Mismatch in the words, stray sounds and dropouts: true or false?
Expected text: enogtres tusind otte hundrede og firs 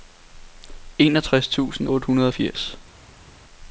false